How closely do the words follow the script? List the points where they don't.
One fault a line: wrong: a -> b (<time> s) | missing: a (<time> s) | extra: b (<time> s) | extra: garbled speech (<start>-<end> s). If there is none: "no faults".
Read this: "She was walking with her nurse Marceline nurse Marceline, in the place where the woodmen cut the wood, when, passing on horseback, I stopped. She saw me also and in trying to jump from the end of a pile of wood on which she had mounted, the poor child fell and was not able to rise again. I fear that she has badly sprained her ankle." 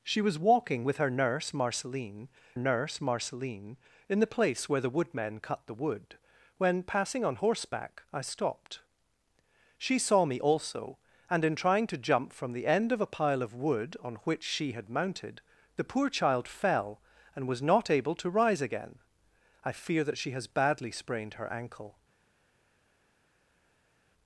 no faults